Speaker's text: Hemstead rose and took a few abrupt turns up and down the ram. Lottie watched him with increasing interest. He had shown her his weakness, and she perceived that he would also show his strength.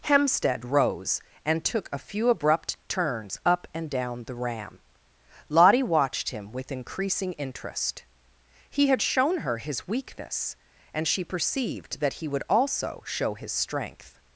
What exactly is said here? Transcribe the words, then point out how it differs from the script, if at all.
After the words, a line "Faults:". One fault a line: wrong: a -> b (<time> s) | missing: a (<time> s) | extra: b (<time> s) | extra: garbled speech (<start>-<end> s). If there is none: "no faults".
Hemstead rose and took a few abrupt turns up and down the ram. Lottie watched him with increasing interest. He had shown her his weakness, and she perceived that he would also show his strength.
Faults:
no faults